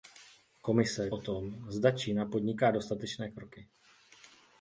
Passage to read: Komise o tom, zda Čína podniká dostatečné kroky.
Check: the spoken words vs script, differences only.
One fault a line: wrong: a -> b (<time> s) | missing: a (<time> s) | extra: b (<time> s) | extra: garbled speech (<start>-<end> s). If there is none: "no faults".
no faults